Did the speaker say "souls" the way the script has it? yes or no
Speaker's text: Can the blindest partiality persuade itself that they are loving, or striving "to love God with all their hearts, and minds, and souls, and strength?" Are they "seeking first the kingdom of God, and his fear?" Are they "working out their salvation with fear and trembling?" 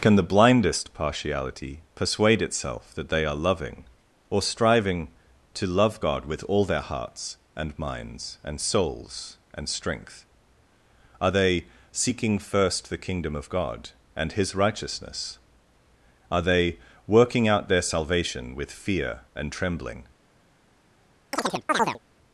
yes